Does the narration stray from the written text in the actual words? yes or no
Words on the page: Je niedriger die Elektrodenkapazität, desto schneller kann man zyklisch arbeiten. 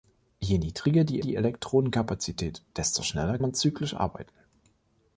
yes